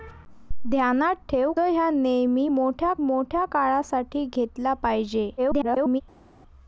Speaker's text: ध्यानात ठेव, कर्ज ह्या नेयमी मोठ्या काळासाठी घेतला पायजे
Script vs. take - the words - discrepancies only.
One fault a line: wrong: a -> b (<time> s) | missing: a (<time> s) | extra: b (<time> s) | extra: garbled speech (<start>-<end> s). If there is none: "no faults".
missing: कर्ज (1.5 s)
extra: मोठ्या (3.0 s)
extra: garbled speech (5.4-6.0 s)